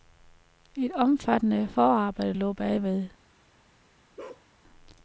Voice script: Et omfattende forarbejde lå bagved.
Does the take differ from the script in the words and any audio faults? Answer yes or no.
yes